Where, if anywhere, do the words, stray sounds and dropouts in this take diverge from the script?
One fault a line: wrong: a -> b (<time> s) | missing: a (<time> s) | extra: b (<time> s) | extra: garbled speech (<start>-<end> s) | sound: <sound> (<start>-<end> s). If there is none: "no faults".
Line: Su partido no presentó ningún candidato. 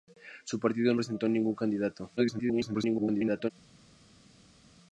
missing: no (0.9 s)
extra: garbled speech (2.2-3.5 s)